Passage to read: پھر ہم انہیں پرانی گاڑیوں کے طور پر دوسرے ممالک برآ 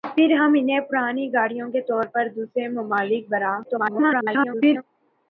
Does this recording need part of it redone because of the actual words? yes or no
yes